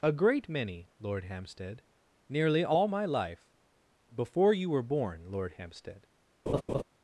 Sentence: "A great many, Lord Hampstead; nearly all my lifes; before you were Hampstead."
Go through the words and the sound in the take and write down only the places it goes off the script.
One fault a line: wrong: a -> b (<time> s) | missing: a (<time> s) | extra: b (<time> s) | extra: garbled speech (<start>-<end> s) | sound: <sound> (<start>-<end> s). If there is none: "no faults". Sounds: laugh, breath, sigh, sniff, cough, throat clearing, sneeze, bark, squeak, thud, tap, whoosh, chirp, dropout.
wrong: lifes -> life (3.0 s)
extra: born Lord (4.8 s)
sound: laugh (6.5-6.8 s)